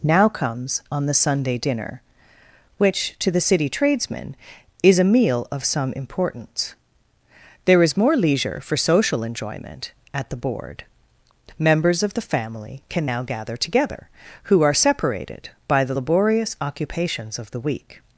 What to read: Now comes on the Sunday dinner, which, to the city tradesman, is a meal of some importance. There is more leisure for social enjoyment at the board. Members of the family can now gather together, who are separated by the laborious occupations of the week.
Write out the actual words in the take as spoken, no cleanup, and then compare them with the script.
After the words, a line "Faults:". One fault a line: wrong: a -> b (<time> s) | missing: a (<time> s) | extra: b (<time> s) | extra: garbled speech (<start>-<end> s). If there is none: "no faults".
Now comes on the Sunday dinner, which, to the city tradesman, is a meal of some importance. There is more leisure for social enjoyment at the board. Members of the family can now gather together, who are separated by the laborious occupations of the week.
Faults:
no faults